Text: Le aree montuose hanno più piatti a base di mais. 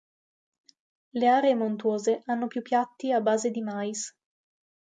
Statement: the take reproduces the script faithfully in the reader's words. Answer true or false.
true